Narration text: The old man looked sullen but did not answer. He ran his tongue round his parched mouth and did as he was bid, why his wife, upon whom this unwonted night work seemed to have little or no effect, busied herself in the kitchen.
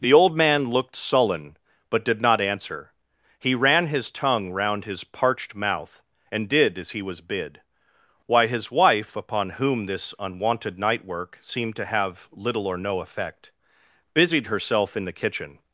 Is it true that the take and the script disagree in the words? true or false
false